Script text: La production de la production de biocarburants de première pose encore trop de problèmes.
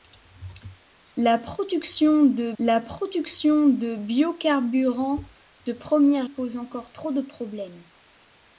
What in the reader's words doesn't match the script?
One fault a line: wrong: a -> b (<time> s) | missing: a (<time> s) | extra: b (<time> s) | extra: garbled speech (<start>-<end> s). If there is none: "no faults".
no faults